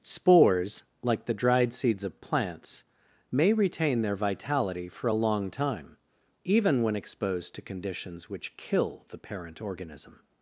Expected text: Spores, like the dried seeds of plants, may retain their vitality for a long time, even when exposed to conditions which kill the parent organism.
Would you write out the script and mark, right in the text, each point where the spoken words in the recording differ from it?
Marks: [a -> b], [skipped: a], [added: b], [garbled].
Spores, like the dried seeds of plants, may retain their vitality for a long time, even when exposed to conditions which kill the parent organism.